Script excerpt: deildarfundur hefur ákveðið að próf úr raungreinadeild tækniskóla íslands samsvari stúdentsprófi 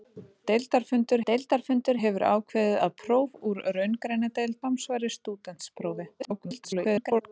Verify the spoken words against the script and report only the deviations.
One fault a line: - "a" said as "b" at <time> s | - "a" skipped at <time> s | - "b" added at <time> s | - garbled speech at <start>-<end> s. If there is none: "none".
- "deildarfundur" added at 1.3 s
- "tækniskóla íslands" skipped at 4.6 s
- garbled speech at 6.2-7.2 s